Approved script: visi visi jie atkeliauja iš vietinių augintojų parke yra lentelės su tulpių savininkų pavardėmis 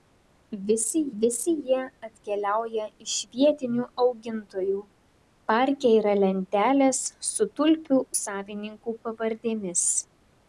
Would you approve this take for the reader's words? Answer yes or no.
yes